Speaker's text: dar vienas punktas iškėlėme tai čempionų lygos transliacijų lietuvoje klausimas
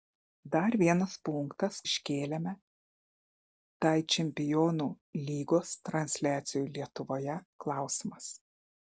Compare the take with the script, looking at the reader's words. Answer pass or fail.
pass